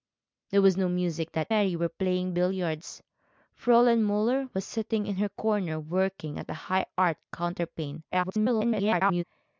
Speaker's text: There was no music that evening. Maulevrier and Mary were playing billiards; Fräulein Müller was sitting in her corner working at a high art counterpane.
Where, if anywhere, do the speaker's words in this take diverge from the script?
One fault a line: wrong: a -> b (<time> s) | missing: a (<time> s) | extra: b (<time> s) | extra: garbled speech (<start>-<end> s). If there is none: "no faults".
missing: evening Maulevrier and (1.5 s)
extra: garbled speech (8.1-9.2 s)